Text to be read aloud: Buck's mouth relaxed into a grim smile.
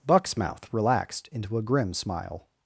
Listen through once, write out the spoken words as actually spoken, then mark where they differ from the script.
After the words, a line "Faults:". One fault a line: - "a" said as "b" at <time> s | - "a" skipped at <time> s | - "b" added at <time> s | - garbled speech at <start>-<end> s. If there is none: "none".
Buck's mouth relaxed into a grim smile.
Faults:
none